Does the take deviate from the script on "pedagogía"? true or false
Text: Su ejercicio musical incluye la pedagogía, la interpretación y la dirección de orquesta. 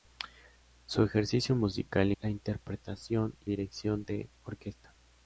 true